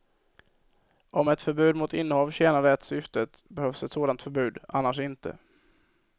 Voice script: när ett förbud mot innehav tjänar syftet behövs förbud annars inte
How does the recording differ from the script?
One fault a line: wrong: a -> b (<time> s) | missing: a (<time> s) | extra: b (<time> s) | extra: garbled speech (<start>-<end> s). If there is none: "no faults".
wrong: när -> om (1.1 s)
extra: det (2.6 s)
extra: ett sådant (3.8 s)